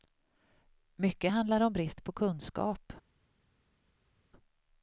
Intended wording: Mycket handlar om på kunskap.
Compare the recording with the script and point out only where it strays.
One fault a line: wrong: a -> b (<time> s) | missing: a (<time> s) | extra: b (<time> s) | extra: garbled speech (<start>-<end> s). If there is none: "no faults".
extra: brist (1.7 s)